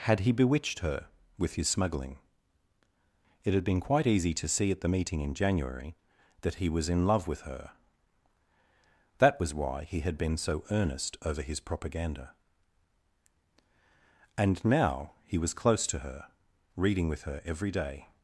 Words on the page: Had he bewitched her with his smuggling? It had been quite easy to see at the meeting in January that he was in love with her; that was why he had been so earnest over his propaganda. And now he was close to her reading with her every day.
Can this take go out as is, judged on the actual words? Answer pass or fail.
pass